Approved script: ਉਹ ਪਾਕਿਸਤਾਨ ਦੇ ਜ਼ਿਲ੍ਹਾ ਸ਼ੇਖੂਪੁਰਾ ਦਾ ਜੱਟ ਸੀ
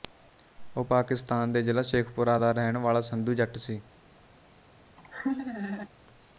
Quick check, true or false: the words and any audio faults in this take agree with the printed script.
false